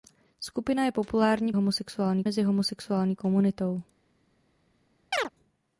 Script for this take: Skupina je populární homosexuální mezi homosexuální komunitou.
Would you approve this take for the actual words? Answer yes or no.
yes